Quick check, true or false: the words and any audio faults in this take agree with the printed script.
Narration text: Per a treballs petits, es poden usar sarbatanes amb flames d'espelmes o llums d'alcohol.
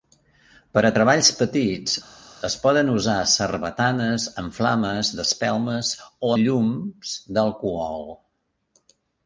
true